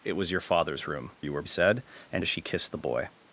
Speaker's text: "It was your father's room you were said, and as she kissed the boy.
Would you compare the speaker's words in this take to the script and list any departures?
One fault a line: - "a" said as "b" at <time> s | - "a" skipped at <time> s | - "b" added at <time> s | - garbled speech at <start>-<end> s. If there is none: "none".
none